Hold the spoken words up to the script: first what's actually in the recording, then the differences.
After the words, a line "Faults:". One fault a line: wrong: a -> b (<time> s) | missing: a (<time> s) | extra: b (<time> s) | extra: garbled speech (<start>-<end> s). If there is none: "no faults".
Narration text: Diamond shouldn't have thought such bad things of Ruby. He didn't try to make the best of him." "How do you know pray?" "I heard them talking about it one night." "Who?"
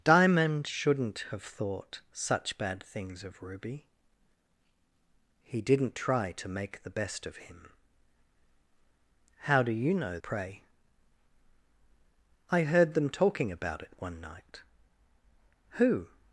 Diamond shouldn't have thought such bad things of Ruby. He didn't try to make the best of him." "How do you know pray?" "I heard them talking about it one night." "Who?"
Faults:
no faults